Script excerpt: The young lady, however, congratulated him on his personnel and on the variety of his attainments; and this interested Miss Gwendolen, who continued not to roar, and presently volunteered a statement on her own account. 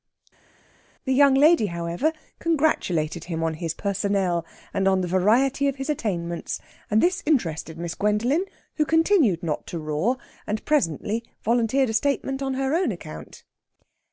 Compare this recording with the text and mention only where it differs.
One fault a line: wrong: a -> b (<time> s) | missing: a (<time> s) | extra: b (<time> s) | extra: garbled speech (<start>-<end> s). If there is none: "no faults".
no faults